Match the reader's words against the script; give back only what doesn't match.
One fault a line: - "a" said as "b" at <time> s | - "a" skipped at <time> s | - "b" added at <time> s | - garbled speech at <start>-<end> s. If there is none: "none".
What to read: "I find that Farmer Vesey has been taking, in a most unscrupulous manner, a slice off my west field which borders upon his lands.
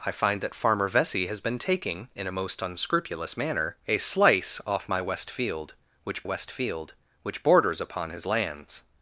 - "west field which" added at 6.2 s